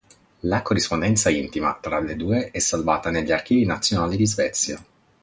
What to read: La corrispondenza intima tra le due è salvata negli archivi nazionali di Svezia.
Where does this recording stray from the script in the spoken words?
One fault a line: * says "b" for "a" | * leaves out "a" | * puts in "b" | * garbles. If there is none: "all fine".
all fine